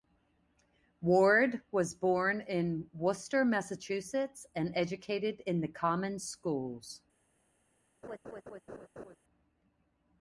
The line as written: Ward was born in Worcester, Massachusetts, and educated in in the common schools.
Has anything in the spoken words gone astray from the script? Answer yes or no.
yes